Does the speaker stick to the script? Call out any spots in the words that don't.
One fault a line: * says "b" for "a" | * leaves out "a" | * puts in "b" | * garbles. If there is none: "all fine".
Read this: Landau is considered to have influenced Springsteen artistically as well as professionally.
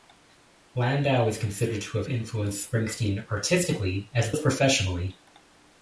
* leaves out "well"